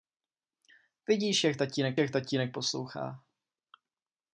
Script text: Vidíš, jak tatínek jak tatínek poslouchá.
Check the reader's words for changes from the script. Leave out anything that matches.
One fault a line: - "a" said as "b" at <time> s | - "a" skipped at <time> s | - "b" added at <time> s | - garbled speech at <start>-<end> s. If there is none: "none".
none